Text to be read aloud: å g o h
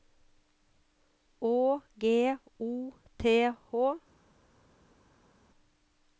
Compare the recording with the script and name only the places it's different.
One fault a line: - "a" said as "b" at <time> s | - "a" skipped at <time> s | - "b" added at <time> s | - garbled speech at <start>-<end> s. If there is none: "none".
- "t" added at 3.2 s